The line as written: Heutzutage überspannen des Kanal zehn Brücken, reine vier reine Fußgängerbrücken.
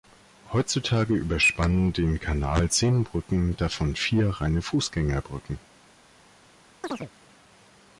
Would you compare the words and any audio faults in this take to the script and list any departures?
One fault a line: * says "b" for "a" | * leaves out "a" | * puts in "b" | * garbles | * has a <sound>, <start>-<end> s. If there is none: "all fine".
* says "den" for "des"
* says "davon" for "reine"
* has a chirp, 6.8-7.1 s